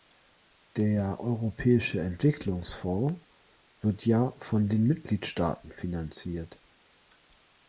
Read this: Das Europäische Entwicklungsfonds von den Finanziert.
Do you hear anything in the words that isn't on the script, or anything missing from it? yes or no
yes